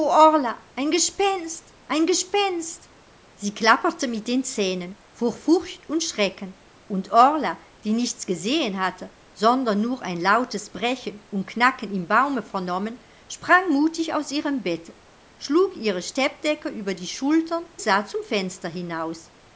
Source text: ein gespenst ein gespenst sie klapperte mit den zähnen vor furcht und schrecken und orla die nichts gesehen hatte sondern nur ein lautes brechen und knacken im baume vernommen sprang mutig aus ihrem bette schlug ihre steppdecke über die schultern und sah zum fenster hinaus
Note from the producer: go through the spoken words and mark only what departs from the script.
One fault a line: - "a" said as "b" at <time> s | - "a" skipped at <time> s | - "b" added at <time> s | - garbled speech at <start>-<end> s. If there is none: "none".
- "und" skipped at 17.6 s